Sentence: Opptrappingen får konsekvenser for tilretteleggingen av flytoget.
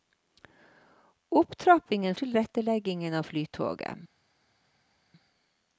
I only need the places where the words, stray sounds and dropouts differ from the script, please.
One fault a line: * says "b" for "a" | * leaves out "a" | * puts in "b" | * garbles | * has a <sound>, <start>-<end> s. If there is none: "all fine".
* leaves out "får konsekvenser for"